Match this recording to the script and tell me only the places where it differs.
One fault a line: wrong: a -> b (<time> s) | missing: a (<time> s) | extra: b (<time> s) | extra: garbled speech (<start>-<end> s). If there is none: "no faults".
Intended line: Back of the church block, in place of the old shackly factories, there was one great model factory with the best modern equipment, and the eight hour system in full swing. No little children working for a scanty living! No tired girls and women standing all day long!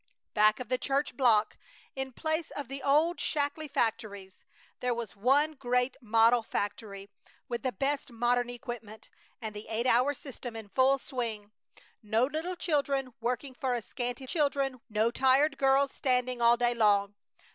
wrong: living -> children (14.2 s)
missing: and women (15.9 s)